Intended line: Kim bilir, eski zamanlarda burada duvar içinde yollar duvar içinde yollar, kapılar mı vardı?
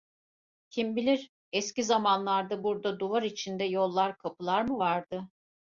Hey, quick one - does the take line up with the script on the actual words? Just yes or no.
no